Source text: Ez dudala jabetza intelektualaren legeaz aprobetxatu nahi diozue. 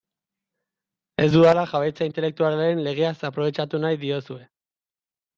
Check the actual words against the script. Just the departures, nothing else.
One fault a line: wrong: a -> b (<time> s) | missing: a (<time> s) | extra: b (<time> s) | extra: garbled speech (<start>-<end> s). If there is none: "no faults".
no faults